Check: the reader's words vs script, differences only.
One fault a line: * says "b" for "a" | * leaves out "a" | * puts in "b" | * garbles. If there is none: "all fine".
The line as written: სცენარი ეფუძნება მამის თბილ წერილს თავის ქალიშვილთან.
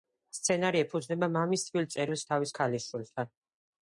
all fine